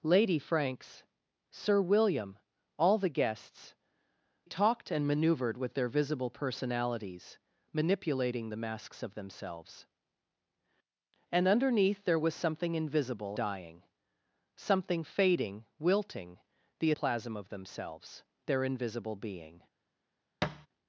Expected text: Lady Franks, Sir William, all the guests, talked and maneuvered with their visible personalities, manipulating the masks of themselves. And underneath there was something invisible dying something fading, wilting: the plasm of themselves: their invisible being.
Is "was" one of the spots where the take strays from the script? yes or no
no